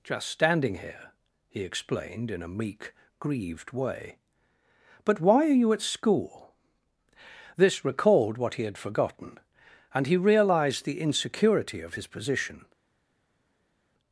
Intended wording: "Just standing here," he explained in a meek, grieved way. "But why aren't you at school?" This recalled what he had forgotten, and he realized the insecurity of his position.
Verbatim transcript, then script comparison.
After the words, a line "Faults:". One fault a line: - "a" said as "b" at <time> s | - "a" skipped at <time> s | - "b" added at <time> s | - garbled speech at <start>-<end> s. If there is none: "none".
"Just standing here," he explained in a meek, grieved way. "But why are you at school?" This recalled what he had forgotten, and he realized the insecurity of his position.
Faults:
- "aren't" said as "are" at 5.5 s